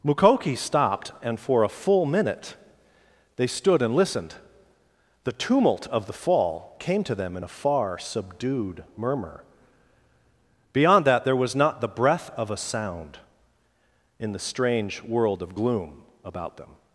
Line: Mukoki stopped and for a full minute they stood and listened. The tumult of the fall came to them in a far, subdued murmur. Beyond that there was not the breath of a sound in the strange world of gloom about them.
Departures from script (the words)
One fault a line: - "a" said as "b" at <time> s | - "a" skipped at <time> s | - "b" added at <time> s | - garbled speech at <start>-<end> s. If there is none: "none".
none